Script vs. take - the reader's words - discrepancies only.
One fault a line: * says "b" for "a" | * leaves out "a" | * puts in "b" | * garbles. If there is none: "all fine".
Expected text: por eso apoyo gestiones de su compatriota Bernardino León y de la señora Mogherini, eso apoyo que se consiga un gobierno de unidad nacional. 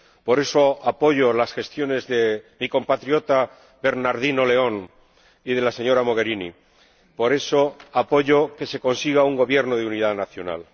* puts in "las"
* says "mi" for "su"
* puts in "por"